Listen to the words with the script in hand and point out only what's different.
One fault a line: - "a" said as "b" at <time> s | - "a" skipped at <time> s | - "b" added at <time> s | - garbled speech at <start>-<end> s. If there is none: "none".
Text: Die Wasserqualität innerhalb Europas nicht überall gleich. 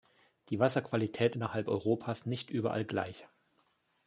none